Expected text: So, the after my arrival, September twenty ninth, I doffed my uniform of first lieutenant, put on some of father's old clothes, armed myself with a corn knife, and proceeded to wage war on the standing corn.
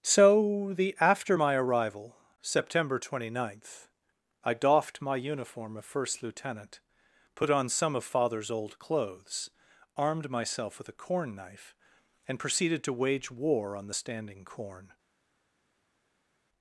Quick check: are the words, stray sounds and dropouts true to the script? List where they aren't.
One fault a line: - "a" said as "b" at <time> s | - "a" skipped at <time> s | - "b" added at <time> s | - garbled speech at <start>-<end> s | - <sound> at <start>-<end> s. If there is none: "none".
none